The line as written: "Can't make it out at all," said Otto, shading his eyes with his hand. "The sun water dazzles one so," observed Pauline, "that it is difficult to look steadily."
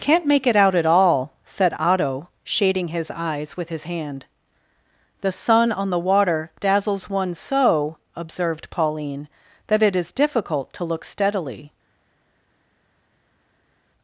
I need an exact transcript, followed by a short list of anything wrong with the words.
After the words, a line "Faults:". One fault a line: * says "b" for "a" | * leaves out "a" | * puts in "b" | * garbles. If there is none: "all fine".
"Can't make it out at all," said Otto, shading his eyes with his hand. "The sun on the water dazzles one so," observed Pauline, "that it is difficult to look steadily."
Faults:
* puts in "on the"